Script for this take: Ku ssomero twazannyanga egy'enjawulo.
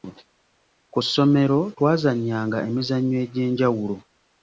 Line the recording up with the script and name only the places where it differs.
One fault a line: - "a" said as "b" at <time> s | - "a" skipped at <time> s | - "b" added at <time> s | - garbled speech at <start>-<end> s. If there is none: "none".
- "emizannyo" added at 2.7 s